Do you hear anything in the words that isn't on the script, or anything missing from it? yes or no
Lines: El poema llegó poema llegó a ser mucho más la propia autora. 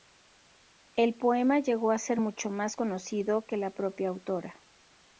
yes